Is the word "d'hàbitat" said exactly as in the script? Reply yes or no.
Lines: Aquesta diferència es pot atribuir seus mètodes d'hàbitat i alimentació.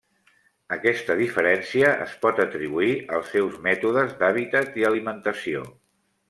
yes